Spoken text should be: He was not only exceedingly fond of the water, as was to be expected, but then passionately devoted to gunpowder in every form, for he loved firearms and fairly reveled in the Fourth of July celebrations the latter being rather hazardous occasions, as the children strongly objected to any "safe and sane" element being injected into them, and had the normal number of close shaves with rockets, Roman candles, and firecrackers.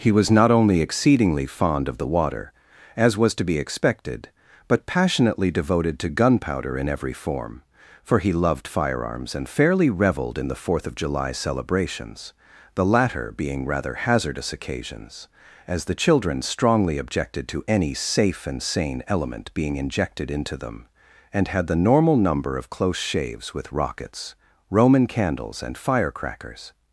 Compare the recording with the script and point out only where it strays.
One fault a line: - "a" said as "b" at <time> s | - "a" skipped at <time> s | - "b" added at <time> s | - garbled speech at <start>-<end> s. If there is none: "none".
- "then" skipped at 4.9 s